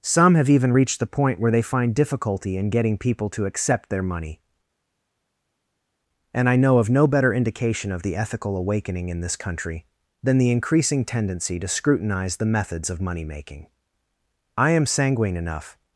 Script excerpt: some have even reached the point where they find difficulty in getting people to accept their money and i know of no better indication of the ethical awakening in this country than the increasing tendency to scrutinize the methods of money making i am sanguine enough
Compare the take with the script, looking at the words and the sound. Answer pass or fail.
pass